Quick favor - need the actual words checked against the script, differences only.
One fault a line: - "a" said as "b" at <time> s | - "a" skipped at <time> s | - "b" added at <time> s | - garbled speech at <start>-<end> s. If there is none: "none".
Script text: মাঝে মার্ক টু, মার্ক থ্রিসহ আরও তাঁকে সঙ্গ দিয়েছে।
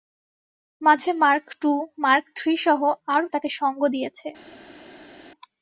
none